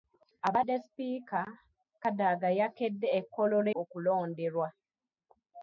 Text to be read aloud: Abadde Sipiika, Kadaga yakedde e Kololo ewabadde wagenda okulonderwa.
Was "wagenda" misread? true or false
true